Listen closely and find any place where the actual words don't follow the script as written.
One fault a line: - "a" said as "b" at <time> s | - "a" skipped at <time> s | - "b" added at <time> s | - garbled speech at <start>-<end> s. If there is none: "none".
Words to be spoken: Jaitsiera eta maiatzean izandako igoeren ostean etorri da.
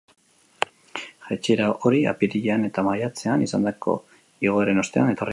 - "hori apirilean" added at 1.9 s